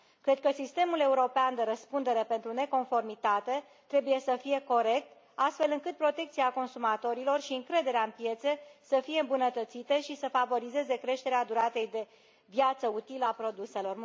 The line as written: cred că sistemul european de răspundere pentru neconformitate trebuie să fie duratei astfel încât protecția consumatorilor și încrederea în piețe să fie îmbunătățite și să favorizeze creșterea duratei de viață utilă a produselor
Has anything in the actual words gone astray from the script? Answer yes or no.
yes